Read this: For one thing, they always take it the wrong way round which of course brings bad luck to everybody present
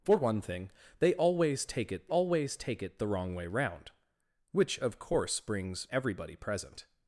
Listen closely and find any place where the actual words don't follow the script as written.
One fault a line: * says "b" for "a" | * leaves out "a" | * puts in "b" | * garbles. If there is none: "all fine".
* puts in "always take it"
* leaves out "bad luck to"